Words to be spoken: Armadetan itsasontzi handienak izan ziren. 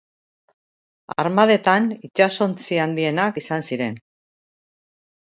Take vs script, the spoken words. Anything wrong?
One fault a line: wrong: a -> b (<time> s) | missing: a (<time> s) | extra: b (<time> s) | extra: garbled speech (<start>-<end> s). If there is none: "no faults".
no faults